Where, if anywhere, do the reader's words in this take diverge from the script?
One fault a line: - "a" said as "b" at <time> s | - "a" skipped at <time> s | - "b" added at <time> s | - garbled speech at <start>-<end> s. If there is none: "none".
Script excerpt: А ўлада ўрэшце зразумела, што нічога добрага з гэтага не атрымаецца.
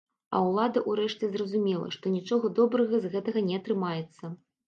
none